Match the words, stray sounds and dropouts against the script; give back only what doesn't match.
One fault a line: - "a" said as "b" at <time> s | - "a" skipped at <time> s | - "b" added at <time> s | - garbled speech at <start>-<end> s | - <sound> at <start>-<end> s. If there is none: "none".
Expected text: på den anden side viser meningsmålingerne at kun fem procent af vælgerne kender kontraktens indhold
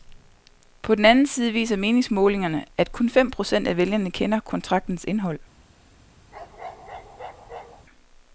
- bark at 6.3-7.9 s